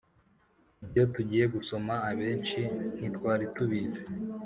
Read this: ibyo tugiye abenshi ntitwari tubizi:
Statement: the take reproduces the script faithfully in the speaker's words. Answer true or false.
false